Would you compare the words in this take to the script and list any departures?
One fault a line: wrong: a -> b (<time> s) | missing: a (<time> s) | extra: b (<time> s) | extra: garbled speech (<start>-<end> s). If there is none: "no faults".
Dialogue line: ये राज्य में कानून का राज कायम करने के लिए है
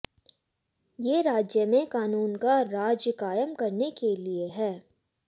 no faults